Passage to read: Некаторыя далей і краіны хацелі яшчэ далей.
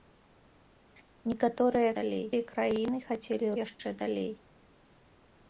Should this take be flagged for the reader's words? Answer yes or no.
no